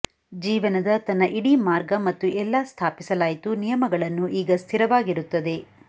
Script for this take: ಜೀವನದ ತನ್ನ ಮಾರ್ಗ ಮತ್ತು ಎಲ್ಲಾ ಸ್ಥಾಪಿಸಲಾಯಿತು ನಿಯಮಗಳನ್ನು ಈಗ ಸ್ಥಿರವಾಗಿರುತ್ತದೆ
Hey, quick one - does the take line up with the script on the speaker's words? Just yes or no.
no